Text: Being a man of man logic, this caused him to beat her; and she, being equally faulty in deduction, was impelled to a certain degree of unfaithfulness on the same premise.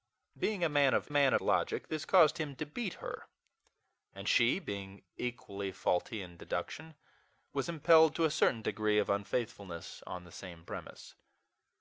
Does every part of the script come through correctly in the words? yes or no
yes